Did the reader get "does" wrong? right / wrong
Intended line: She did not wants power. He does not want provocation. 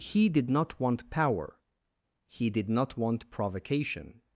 wrong